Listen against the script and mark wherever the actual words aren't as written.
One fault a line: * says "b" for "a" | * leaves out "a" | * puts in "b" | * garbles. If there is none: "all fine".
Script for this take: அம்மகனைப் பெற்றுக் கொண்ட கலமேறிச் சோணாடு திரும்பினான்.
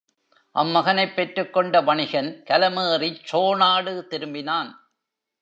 * puts in "வணிகன்"